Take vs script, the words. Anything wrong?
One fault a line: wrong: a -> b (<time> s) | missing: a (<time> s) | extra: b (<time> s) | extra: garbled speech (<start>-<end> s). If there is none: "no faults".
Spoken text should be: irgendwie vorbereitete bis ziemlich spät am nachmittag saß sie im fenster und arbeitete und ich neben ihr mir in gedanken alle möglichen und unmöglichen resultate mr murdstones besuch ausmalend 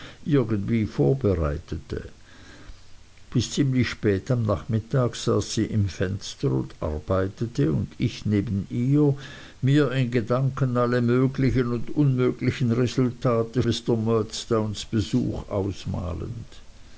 no faults